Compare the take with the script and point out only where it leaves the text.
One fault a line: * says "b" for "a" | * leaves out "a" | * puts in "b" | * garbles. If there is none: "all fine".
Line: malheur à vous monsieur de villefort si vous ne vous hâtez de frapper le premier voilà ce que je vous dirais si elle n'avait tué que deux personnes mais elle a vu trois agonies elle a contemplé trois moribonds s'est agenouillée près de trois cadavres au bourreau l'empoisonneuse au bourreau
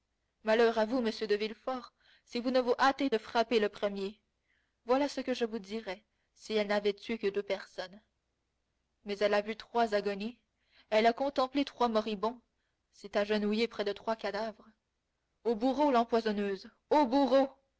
all fine